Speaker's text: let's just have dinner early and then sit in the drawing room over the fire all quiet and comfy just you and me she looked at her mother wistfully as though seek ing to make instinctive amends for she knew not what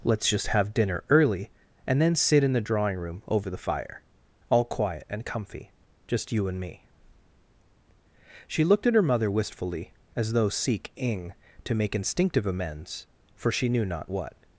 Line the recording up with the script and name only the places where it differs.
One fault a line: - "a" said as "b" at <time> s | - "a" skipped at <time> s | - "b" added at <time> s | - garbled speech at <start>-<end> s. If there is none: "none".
none